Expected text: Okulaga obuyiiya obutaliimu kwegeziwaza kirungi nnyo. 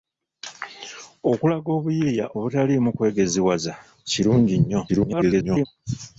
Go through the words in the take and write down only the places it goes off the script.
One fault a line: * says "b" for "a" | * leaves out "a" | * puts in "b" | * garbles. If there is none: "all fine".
* garbles